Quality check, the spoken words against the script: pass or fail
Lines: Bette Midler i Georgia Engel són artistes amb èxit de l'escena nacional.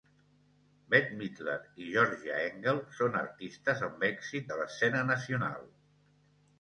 pass